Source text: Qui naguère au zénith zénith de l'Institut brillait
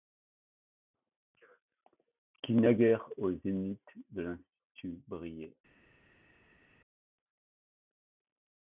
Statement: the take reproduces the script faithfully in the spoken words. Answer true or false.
false